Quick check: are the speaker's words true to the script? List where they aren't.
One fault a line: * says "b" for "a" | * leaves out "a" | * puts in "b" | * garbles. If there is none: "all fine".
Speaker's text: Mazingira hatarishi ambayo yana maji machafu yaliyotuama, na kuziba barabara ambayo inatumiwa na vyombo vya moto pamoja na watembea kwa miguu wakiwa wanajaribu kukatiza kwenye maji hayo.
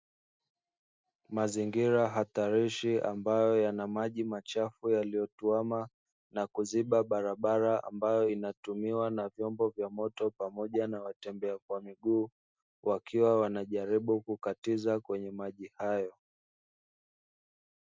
all fine